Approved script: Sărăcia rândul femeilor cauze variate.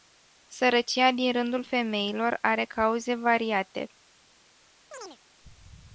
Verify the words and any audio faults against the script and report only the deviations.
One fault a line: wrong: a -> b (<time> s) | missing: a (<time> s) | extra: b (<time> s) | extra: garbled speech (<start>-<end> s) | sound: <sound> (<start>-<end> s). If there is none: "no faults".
extra: din (1.1 s)
extra: are (2.4 s)
sound: chirp (4.9-5.2 s)